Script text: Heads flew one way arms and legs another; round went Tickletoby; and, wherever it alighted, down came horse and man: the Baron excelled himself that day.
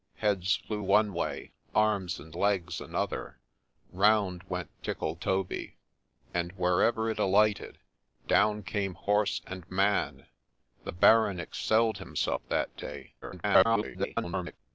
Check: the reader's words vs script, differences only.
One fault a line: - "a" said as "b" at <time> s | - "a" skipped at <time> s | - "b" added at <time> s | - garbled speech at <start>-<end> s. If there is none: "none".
- garbled speech at 13.2-14.6 s